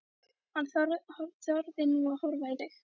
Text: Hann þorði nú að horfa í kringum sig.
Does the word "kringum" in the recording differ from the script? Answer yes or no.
yes